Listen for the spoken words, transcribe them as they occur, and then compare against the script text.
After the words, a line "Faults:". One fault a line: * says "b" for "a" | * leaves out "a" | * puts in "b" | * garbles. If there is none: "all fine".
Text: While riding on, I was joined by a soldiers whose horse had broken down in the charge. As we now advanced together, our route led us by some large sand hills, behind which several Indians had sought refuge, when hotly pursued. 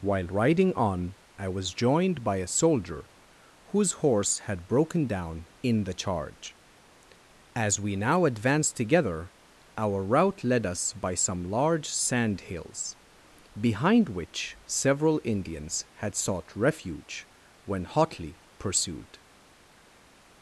While riding on, I was joined by a soldier whose horse had broken down in the charge. As we now advanced together, our route led us by some large sand hills, behind which several Indians had sought refuge, when hotly pursued.
Faults:
* says "soldier" for "soldiers"